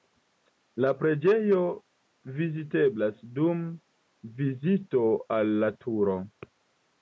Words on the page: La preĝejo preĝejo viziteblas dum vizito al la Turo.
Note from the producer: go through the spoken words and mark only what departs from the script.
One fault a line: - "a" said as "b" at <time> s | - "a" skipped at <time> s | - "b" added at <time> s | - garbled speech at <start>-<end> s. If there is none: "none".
- "preĝejo" skipped at 1.6 s